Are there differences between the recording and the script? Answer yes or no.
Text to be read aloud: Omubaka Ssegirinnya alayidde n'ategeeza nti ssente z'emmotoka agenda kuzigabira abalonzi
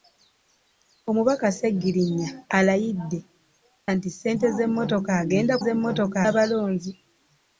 yes